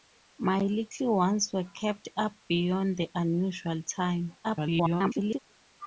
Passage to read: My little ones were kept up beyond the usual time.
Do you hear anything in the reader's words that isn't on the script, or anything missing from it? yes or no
yes